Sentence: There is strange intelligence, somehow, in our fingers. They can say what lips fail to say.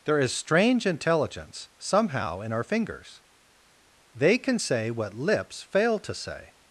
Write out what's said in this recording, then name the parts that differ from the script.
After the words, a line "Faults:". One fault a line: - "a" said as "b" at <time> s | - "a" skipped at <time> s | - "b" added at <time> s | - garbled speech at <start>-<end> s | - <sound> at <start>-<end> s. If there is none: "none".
There is strange intelligence, somehow, in our fingers. They can say what lips fail to say.
Faults:
none